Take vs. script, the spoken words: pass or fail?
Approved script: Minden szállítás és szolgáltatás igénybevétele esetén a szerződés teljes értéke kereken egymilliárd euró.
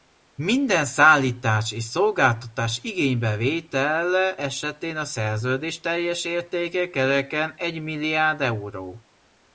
pass